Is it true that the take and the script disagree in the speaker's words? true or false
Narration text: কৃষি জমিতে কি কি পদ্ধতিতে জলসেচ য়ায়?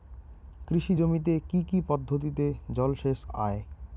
false